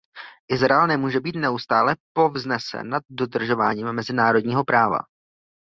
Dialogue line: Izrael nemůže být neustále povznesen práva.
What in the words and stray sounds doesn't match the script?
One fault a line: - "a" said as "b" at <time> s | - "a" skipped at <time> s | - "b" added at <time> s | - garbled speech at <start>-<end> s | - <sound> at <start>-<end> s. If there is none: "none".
- "nad dodržováním mezinárodního" added at 2.9 s